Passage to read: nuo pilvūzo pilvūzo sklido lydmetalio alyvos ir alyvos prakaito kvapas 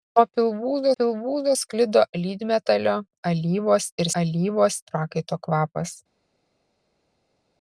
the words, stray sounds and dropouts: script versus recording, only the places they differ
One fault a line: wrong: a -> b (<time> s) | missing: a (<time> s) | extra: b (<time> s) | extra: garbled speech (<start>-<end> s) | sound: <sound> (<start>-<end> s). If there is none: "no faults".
no faults